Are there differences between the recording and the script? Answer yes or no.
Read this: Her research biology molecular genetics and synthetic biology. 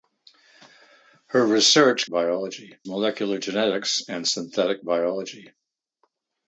no